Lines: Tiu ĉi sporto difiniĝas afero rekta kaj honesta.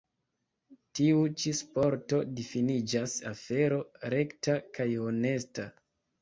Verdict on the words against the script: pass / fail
pass